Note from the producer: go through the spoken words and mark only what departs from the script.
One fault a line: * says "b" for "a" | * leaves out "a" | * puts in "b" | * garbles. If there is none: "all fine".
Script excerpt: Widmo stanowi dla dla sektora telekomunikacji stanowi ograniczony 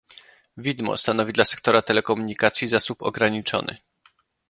* leaves out "dla"
* says "zasób" for "stanowi"